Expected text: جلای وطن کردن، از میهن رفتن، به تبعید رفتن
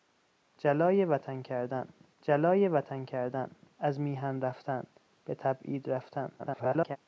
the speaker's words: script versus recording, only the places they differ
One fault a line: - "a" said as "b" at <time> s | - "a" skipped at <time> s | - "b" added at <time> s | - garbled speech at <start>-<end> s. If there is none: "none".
- "جلای وطن کردن" added at 2.2 s
- garbled speech at 6.4-7.0 s